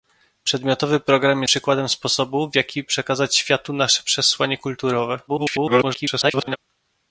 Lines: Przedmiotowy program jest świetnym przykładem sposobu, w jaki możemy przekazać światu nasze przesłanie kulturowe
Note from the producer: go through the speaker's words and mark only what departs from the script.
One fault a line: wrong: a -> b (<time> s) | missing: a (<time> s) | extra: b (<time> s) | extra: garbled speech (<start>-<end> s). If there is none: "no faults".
missing: jest świetnym (1.4 s)
missing: możemy (2.9 s)
extra: garbled speech (5.3-6.6 s)